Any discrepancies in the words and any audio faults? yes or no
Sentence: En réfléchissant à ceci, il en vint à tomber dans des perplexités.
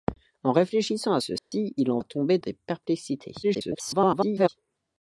yes